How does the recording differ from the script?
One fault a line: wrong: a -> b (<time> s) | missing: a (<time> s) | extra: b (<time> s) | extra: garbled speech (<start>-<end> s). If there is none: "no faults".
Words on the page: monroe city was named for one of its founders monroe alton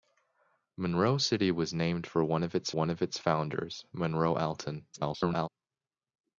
extra: one of its (2.7 s)
extra: garbled speech (4.9-5.5 s)